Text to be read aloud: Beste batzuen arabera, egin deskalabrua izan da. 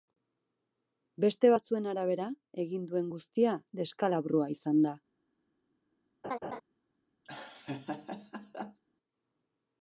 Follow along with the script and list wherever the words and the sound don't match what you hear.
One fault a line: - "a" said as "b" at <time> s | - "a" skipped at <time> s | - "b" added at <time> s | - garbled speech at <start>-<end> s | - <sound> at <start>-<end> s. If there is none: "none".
- "duen guztia" added at 2.9 s
- laugh at 6.2-6.6 s
- laugh at 7.2-8.8 s